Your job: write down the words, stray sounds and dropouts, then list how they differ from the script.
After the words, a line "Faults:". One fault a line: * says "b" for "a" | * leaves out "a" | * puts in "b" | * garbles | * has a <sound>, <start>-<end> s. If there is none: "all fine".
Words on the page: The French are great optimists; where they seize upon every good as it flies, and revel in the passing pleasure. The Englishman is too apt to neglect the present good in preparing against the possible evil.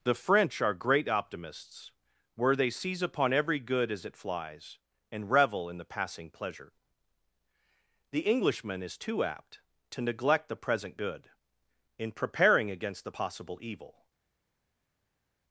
The French are great optimists; where they seize upon every good as it flies, and revel in the passing pleasure. The Englishman is too apt to neglect the present good in preparing against the possible evil.
Faults:
all fine